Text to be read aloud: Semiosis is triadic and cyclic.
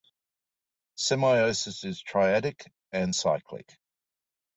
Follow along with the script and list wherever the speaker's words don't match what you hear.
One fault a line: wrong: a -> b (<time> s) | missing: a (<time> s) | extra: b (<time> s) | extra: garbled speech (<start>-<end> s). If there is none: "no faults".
no faults